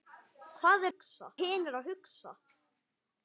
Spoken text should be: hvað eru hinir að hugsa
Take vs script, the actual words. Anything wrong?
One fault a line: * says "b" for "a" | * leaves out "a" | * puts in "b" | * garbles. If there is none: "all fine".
* says "hugsa" for "eru"